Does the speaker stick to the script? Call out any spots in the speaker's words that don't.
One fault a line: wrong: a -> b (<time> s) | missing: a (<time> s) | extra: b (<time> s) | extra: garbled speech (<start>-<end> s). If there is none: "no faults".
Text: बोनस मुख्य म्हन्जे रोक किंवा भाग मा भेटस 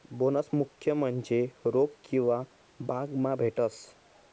no faults